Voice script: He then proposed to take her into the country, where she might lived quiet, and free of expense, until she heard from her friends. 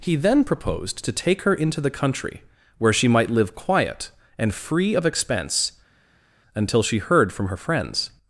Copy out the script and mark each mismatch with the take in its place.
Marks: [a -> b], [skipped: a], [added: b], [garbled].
He then proposed to take her into the country, where she might [lived -> live] quiet, and free of expense, until she heard from her friends.